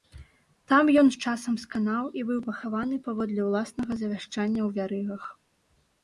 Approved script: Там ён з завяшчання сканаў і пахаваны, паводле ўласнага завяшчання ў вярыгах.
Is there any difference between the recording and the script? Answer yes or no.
yes